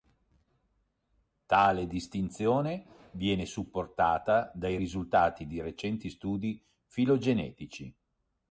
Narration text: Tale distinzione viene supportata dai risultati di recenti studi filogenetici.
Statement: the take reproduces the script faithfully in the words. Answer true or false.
true